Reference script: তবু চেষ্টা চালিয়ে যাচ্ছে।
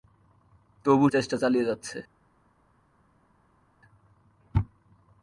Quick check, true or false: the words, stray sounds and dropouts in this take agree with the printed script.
true